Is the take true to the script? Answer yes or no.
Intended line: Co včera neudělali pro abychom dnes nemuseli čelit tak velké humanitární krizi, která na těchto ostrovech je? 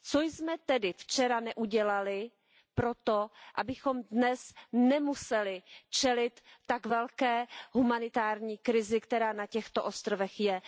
no